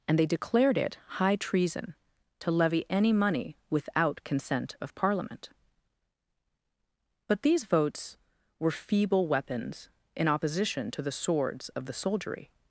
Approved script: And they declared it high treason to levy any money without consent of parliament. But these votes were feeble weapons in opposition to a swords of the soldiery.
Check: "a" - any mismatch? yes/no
yes